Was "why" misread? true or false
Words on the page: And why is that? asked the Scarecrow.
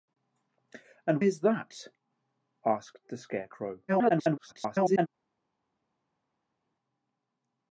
true